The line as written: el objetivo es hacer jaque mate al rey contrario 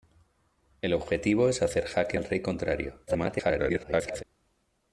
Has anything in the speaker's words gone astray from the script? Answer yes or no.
yes